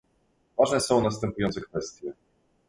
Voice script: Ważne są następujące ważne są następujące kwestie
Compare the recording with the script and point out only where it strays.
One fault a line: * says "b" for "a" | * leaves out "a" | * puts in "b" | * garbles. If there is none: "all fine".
* leaves out "ważne są następujące"